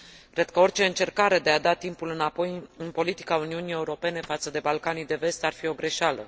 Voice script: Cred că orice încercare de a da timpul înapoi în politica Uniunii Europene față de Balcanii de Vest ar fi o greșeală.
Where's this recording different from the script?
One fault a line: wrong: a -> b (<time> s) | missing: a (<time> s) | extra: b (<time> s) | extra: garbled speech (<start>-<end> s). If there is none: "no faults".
no faults